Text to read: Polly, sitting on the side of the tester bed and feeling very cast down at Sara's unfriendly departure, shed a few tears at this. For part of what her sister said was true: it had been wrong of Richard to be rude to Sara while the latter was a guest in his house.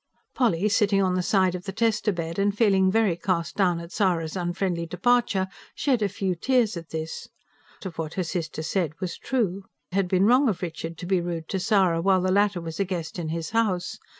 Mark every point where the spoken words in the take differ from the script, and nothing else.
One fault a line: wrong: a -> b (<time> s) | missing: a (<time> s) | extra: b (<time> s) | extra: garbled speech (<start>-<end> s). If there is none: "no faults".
missing: For part (7.3 s)
missing: it (9.7 s)